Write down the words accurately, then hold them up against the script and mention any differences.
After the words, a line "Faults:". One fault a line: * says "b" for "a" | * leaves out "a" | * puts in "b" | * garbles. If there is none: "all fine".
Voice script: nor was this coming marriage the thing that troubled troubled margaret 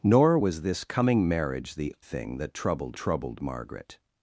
nor was this coming marriage the thing that troubled troubled margaret
Faults:
all fine